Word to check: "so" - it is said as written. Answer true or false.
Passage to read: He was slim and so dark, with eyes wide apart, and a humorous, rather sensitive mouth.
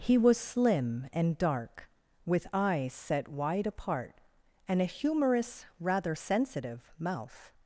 false